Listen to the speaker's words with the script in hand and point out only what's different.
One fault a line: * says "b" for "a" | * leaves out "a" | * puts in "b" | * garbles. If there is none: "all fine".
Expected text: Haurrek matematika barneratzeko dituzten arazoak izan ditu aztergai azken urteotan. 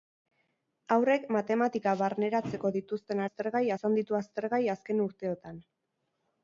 * says "aztergai" for "arazoak"